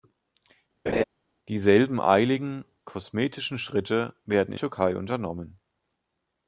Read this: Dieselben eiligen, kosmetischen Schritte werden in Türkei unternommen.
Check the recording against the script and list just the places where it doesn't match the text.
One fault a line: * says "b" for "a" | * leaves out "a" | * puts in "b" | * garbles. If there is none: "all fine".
all fine